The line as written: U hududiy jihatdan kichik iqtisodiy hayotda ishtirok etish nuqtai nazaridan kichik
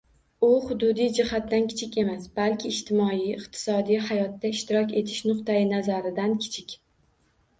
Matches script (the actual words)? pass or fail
fail